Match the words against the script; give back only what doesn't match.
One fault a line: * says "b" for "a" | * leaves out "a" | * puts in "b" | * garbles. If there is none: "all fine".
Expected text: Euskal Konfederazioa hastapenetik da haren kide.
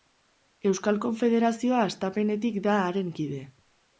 all fine